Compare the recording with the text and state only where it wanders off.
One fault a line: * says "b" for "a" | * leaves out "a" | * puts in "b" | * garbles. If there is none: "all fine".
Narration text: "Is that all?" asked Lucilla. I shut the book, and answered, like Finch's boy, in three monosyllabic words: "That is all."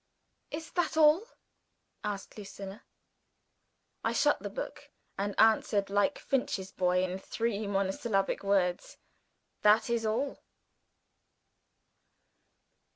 all fine